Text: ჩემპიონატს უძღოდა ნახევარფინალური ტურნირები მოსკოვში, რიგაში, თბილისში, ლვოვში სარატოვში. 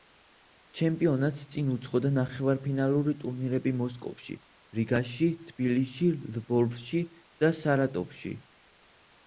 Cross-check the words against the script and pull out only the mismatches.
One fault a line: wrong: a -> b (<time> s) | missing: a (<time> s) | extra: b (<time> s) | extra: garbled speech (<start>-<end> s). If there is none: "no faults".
extra: წინ (1.6 s)
extra: და (7.5 s)